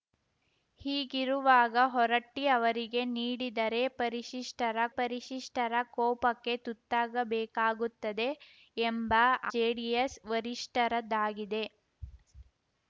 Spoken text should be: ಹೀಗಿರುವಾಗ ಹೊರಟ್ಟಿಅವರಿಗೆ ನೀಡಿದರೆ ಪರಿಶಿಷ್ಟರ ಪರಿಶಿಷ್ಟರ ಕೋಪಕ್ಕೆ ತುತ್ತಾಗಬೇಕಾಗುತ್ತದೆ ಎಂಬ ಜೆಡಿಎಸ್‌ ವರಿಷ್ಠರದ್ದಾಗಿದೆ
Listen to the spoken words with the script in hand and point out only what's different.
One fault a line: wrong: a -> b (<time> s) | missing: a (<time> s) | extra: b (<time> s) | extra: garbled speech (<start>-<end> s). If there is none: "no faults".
no faults